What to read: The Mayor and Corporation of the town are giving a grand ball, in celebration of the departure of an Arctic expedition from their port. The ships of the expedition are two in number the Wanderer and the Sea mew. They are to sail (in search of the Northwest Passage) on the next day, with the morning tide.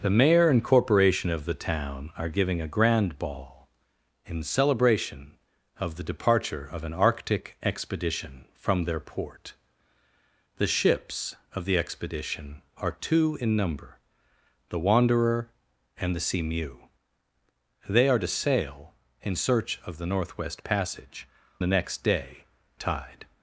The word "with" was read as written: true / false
false